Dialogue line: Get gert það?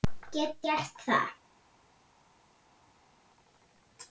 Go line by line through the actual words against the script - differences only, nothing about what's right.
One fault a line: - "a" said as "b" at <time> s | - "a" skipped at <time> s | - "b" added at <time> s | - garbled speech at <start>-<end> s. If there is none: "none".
none